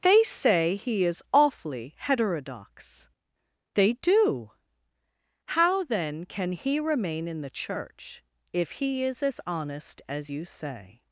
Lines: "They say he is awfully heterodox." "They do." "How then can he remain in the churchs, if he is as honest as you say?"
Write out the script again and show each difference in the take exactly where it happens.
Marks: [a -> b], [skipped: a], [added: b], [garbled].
"They say he is awfully heterodox." "They do." "How then can he remain in the [churchs, -> church] if he is as honest as you say?"